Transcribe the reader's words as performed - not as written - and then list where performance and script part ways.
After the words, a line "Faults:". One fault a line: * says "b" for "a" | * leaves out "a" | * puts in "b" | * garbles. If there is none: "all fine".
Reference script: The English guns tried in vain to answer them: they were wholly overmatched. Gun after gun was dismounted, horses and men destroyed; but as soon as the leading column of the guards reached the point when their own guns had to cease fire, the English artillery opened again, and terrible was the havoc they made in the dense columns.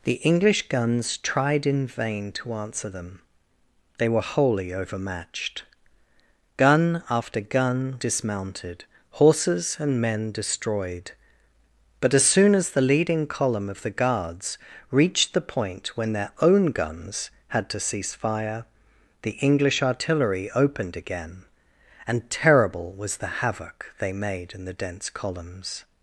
The English guns tried in vain to answer them: they were wholly overmatched. Gun after gun dismounted, horses and men destroyed; but as soon as the leading column of the guards reached the point when their own guns had to cease fire, the English artillery opened again, and terrible was the havoc they made in the dense columns.
Faults:
* leaves out "was"